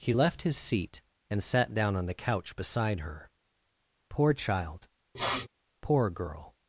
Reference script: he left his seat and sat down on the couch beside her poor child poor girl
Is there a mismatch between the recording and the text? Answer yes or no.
no